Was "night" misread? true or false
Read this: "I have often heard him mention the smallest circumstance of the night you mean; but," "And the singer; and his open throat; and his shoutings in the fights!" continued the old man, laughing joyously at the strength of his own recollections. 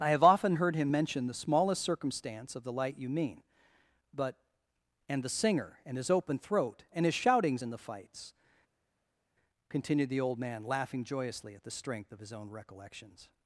true